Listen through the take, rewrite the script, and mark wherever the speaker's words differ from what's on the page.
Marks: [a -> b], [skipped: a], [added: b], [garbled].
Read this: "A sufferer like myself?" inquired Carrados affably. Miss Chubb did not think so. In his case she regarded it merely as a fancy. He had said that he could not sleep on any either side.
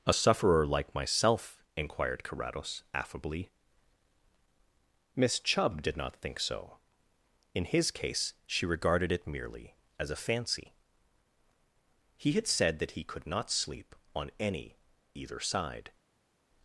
"A sufferer like myself?" inquired Carrados affably. Miss Chubb did not think so. In his case she regarded it merely as a fancy. He had said that he could not sleep on any either side.